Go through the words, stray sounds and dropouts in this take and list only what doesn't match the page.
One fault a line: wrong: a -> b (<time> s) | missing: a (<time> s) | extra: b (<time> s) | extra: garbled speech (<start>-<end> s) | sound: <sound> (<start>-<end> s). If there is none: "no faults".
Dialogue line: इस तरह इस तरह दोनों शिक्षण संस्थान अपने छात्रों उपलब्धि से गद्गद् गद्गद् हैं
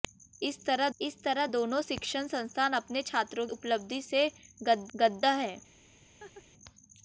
sound: laugh (6.2-6.4 s)